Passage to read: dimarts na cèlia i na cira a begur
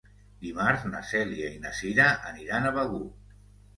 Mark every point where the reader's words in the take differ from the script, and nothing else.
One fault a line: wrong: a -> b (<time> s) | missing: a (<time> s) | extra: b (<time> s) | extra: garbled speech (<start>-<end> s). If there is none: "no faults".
extra: aniran (2.3 s)